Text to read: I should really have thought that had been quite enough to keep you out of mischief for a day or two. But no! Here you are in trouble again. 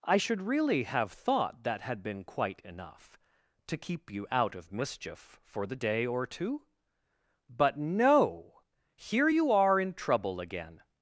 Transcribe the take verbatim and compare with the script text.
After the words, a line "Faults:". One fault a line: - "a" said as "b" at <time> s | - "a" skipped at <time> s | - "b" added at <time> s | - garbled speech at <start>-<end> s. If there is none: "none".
I should really have thought that had been quite enough to keep you out of mischief for the day or two. But no! Here you are in trouble again.
Faults:
- "a" said as "the" at 5.7 s